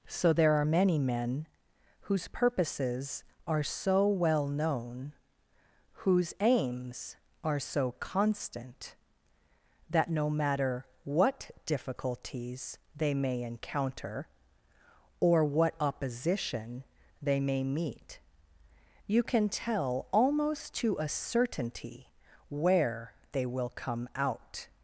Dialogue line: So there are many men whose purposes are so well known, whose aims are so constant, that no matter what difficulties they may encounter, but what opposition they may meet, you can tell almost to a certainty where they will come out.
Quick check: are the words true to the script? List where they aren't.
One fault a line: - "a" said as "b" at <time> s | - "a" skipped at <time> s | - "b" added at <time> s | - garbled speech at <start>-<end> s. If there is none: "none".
- "but" said as "or" at 15.2 s